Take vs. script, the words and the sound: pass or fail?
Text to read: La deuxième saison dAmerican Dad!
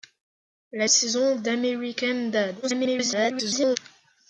fail